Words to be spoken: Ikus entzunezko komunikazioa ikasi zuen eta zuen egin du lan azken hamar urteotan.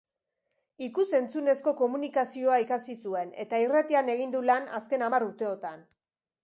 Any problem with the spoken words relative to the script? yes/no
yes